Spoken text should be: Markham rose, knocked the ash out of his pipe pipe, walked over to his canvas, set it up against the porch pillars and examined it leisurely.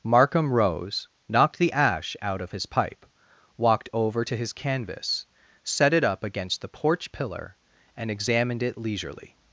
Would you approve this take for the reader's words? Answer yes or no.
no